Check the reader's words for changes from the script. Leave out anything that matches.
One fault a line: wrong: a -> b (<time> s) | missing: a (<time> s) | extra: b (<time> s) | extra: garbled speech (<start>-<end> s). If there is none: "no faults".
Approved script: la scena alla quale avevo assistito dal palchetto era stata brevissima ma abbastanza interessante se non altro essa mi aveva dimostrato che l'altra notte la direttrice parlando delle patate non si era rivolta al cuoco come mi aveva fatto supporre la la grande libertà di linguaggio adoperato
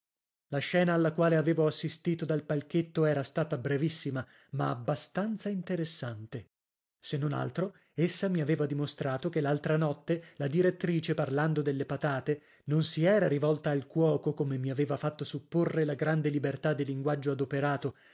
missing: la (15.9 s)